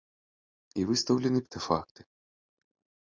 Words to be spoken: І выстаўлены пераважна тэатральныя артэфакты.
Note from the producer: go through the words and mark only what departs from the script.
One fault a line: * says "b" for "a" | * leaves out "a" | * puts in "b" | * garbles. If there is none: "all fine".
* leaves out "пераважна тэатральныя"